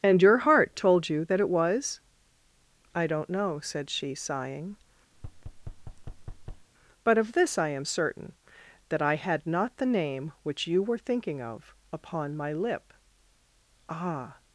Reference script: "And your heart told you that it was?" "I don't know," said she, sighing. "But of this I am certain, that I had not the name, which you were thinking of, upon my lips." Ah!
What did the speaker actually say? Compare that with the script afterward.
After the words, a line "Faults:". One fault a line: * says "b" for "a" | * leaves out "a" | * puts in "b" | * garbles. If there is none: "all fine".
"And your heart told you that it was?" "I don't know," said she, sighing. "But of this I am certain, that I had not the name, which you were thinking of, upon my lip." Ah!
Faults:
* says "lip" for "lips"